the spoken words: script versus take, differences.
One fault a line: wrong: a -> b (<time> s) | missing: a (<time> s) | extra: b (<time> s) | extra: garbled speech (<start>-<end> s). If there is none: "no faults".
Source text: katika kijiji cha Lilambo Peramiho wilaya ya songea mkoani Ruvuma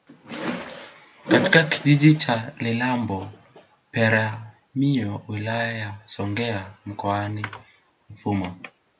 no faults